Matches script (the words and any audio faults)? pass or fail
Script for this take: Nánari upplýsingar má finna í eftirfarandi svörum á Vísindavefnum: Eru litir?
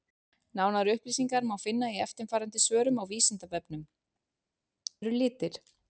pass